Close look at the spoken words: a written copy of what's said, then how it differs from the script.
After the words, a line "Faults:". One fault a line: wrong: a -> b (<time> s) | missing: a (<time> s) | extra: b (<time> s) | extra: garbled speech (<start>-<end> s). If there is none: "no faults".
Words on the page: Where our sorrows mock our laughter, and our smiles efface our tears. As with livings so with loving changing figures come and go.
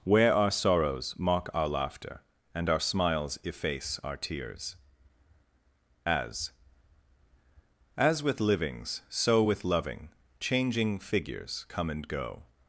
Where our sorrows mock our laughter, and our smiles efface our tears. As As with livings so with loving changing figures come and go.
Faults:
extra: As (8.0 s)